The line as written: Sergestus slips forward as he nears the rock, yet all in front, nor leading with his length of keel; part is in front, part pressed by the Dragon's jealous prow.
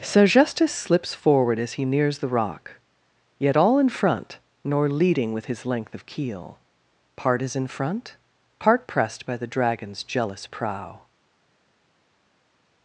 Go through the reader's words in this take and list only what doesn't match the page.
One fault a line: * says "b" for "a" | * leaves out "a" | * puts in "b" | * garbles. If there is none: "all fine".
all fine